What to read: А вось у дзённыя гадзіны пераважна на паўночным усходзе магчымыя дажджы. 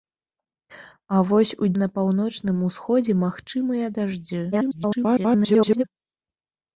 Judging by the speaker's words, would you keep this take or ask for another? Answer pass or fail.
fail